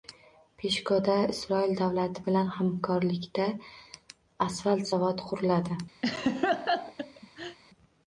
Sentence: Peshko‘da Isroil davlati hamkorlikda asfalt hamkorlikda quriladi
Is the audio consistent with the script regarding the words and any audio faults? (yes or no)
no